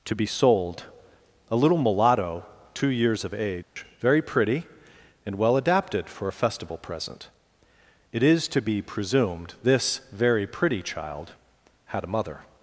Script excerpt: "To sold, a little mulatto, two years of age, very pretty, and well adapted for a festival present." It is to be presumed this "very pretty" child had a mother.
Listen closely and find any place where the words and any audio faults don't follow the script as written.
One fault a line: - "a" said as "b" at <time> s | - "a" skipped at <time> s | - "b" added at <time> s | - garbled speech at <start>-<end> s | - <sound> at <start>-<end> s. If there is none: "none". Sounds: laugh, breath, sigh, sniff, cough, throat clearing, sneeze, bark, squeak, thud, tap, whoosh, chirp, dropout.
- "be" added at 0.1 s
- dropout at 3.6-3.8 s